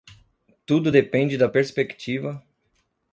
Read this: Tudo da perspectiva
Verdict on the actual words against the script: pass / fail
fail